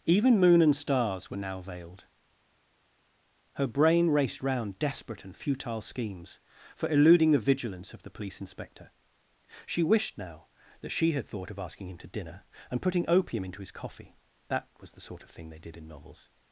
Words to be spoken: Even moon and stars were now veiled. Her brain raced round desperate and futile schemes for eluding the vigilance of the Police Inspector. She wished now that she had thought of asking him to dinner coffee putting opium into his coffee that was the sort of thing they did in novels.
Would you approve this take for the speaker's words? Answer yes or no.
no